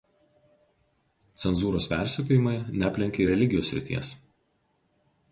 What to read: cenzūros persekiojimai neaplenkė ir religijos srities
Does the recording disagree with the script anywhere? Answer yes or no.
yes